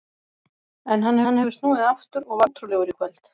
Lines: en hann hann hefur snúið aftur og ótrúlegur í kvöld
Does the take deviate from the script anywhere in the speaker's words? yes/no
no